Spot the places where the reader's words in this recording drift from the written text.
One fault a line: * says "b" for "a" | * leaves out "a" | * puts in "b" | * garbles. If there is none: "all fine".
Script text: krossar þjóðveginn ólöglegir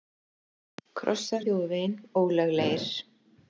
all fine